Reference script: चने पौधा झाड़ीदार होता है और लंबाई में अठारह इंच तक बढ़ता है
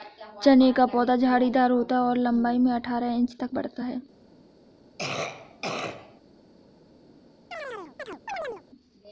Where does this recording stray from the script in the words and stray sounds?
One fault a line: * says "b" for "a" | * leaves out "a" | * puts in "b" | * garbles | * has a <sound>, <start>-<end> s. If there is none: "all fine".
* puts in "का"
* has a cough, 5.0-6.2 s
* has a chirp, 7.5-8.6 s